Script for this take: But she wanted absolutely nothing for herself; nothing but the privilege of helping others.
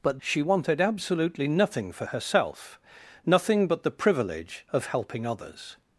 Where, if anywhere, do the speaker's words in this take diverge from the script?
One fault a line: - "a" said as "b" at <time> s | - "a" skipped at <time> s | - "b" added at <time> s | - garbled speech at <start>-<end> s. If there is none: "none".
none